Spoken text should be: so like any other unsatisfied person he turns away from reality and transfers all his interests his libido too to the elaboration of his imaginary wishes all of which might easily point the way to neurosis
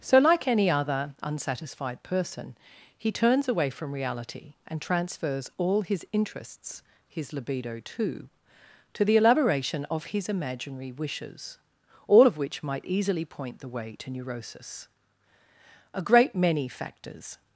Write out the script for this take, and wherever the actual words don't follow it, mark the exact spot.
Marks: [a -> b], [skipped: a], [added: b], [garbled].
so like any other unsatisfied person he turns away from reality and transfers all his interests his libido too to the elaboration of his imaginary wishes all of which might easily point the way to neurosis [added: a great many factors]